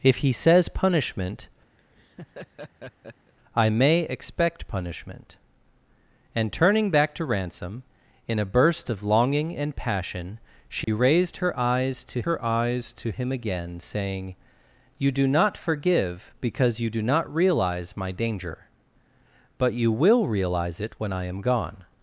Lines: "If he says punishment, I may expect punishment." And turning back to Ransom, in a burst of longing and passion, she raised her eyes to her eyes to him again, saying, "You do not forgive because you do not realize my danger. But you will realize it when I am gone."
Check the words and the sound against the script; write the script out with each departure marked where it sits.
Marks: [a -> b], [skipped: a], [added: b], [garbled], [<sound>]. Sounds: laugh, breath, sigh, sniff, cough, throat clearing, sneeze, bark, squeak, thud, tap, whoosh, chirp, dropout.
"If he says punishment, [laugh] I may expect punishment." And turning back to Ransom, in a burst of longing and passion, she [dropout] raised her eyes to her eyes to him again, saying, "You do not forgive because you do not realize my danger. But you will realize it when I am gone."